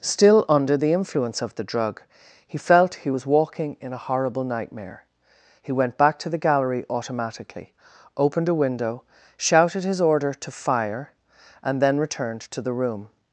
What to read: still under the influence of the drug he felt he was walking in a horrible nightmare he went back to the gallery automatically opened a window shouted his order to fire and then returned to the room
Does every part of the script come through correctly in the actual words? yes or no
yes